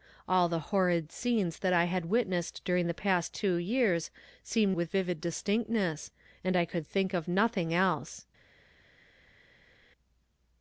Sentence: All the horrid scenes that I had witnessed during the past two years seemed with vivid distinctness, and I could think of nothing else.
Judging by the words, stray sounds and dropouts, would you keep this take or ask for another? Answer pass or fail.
pass